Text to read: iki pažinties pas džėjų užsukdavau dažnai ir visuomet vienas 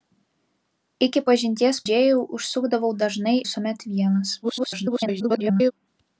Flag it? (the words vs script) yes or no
yes